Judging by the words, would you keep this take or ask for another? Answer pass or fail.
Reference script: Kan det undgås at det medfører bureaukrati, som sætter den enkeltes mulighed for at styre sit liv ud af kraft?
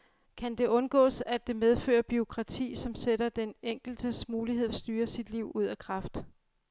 fail